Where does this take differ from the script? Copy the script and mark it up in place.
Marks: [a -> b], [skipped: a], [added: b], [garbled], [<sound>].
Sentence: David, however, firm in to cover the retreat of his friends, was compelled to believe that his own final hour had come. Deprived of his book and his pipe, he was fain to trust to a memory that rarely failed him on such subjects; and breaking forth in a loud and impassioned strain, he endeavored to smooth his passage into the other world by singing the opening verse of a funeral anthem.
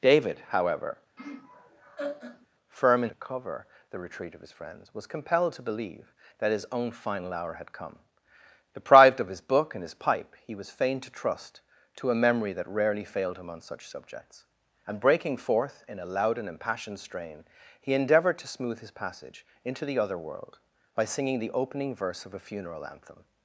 David, however, [laugh] firm in to cover the retreat of his friends, was compelled to believe that his own final hour had come. Deprived of his book and his pipe, he was fain to trust to a memory that rarely failed him on such subjects; and breaking forth in a loud and impassioned strain, he endeavored to smooth his passage into the other world by singing the opening verse of a funeral anthem.